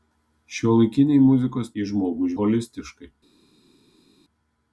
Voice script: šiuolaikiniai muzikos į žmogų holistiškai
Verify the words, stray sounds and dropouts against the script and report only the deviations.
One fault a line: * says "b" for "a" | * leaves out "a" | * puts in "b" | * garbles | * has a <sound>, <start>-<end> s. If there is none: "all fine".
all fine